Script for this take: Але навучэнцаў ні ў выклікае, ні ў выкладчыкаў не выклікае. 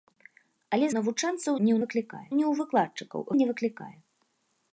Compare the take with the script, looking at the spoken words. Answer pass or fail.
pass